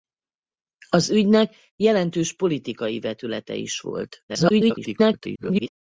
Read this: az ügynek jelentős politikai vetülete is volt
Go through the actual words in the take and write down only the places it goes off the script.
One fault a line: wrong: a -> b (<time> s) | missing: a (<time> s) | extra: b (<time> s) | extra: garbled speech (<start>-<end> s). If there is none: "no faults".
extra: garbled speech (4.3-5.7 s)